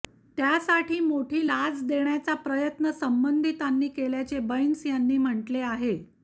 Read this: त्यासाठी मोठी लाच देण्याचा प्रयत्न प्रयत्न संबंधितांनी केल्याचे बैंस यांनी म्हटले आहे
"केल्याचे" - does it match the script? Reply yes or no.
yes